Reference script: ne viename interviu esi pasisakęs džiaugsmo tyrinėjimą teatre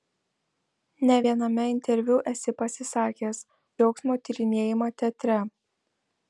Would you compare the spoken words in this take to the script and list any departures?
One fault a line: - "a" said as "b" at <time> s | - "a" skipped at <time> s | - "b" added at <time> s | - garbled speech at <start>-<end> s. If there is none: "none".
none